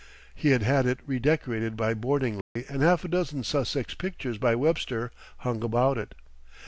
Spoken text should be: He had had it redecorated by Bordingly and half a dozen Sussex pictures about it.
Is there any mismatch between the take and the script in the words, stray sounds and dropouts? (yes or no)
yes